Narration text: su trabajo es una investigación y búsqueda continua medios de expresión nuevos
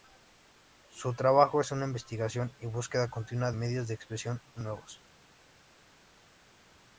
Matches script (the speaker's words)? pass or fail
pass